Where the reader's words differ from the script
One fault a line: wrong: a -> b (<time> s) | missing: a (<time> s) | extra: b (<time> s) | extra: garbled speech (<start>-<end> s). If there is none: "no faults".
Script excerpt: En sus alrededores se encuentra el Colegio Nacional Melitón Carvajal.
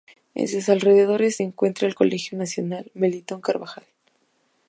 no faults